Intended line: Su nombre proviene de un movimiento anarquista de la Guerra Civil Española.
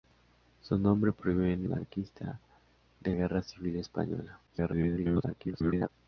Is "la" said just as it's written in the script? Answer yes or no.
no